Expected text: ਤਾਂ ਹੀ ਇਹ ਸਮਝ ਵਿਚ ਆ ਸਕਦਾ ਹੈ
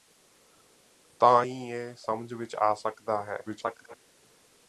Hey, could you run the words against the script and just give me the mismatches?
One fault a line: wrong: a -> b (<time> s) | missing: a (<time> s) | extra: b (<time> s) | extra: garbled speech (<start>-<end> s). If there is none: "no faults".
extra: garbled speech (3.5-3.9 s)